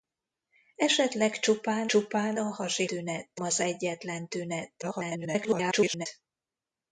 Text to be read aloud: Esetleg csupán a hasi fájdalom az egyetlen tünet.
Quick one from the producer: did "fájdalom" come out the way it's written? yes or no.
no